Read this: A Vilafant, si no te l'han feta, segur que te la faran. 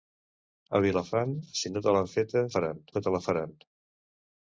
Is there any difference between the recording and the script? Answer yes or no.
yes